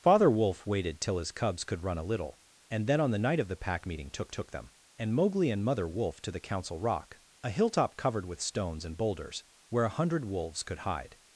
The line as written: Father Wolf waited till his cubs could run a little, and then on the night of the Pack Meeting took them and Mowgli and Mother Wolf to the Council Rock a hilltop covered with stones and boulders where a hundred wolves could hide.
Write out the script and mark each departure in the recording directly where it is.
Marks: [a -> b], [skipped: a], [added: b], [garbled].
Father Wolf waited till his cubs could run a little, and then on the night of the Pack Meeting took [added: took] them and Mowgli and Mother Wolf to the Council Rock a hilltop covered with stones and boulders where a hundred wolves could hide.